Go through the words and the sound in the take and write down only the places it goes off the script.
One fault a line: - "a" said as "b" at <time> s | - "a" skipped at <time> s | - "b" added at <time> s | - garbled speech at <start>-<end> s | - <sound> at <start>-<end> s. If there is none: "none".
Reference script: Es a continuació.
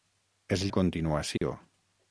- dropout at 1.4-1.4 s